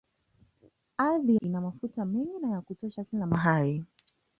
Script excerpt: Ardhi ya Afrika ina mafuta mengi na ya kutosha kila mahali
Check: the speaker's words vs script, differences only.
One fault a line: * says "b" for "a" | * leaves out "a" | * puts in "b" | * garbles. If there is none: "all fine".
* leaves out "ya Afrika"